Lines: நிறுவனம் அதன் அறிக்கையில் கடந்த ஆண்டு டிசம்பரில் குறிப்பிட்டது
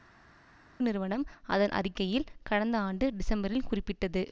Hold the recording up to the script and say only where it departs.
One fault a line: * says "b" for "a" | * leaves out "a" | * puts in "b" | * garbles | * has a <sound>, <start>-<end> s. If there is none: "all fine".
all fine